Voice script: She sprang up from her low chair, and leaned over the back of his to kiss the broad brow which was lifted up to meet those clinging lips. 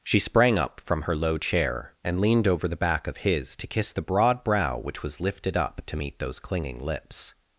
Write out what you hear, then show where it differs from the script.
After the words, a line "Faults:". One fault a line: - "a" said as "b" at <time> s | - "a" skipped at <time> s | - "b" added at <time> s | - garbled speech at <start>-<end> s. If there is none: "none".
She sprang up from her low chair, and leaned over the back of his to kiss the broad brow which was lifted up to meet those clinging lips.
Faults:
none